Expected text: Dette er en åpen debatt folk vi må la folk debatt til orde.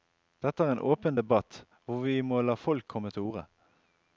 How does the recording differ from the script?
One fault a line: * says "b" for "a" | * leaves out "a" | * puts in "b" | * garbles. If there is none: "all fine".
* says "hvor" for "folk"
* says "komme" for "debatt"